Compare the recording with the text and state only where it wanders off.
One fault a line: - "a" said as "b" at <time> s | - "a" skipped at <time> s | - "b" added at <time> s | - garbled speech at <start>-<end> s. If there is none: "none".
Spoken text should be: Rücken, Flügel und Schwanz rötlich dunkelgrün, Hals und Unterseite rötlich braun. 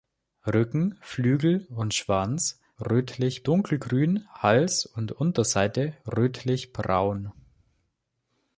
none